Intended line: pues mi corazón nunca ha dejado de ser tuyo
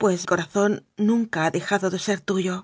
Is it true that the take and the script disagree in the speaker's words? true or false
true